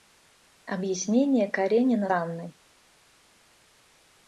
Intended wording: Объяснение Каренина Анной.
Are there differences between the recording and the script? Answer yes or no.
no